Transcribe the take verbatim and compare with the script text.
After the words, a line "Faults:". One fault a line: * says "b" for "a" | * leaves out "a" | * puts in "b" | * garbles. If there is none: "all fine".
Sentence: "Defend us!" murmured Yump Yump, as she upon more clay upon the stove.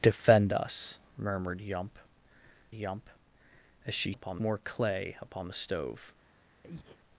"Defend us!" murmured Yump Yump, as she upon more clay upon the stove.
Faults:
all fine